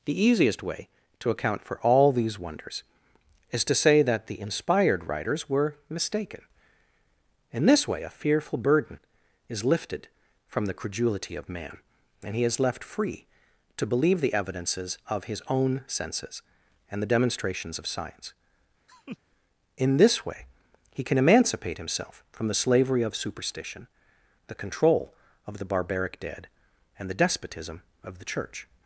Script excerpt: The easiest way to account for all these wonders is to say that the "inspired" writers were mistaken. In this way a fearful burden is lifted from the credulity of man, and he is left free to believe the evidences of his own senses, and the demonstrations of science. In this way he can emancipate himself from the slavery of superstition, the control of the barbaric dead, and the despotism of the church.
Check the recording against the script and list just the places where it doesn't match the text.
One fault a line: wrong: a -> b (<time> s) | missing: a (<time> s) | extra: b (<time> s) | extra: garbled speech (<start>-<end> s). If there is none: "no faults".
no faults